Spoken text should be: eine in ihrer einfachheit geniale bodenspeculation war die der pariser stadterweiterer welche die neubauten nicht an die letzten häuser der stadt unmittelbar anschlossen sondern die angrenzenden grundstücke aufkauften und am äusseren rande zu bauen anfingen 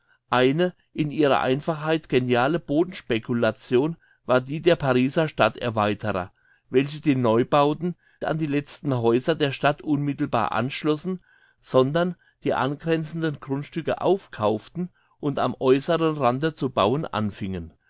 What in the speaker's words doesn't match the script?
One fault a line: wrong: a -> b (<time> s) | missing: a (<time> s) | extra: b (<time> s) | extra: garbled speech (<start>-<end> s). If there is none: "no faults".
missing: nicht (8.0 s)